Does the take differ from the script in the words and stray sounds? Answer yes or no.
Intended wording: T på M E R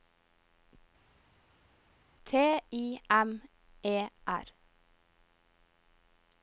yes